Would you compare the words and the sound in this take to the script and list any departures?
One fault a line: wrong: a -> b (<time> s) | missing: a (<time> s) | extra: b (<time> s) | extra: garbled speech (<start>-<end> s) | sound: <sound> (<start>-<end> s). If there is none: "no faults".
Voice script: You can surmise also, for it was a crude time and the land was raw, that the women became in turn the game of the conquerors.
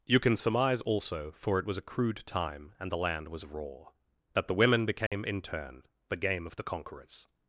sound: dropout (5.1-5.1 s)